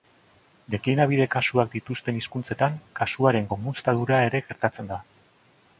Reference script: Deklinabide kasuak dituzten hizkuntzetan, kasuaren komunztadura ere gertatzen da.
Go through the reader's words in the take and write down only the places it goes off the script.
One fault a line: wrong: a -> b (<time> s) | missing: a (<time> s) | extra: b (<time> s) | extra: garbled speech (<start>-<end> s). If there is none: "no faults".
no faults